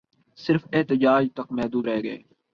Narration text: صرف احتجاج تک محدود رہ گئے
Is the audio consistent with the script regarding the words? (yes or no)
yes